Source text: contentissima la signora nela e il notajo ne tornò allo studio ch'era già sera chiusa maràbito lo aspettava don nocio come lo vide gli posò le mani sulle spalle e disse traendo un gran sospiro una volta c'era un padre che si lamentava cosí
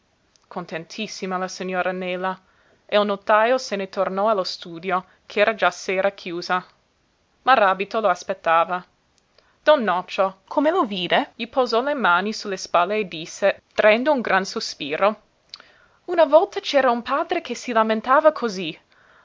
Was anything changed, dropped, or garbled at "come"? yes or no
no